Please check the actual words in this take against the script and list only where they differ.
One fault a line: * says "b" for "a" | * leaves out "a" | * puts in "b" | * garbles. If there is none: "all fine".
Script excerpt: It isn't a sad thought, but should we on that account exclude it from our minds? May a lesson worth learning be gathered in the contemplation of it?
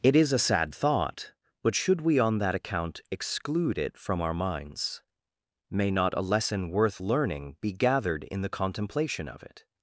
* says "is" for "isn't"
* puts in "not"